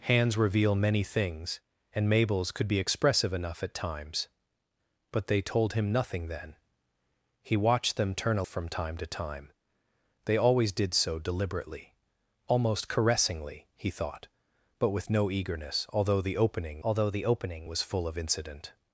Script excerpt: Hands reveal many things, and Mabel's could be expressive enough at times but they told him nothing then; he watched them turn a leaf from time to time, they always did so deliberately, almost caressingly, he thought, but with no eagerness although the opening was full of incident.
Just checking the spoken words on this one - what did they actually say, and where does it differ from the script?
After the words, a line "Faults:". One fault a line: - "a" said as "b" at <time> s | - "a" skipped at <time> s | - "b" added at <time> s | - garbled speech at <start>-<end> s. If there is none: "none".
Hands reveal many things, and Mabel's could be expressive enough at times but they told him nothing then; he watched them turn a from time to time, they always did so deliberately, almost caressingly, he thought, but with no eagerness although the opening although the opening was full of incident.
Faults:
- "leaf" skipped at 8.4 s
- "although the opening" added at 16.8 s